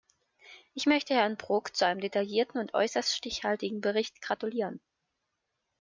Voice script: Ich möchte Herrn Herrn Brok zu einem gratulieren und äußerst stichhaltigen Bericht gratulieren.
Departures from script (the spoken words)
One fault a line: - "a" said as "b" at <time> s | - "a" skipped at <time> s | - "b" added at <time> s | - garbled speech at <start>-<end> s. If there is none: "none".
- "Herrn" skipped at 1.4 s
- "gratulieren" said as "detaillierten" at 2.0 s